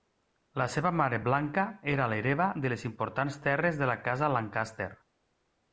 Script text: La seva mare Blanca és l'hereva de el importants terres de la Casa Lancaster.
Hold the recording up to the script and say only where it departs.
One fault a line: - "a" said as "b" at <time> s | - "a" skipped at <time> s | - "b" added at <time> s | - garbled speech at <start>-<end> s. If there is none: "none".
- "és" said as "era" at 2.0 s
- "el" said as "les" at 2.7 s